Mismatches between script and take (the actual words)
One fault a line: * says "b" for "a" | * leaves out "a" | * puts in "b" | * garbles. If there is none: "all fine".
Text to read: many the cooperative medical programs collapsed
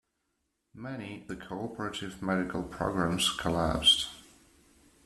all fine